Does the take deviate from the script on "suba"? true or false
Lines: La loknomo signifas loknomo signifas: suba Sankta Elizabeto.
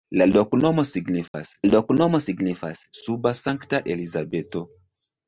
false